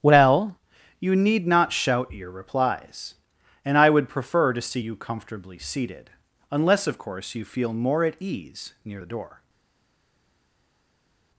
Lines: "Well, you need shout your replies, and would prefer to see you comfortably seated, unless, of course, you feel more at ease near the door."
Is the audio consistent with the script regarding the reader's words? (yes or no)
no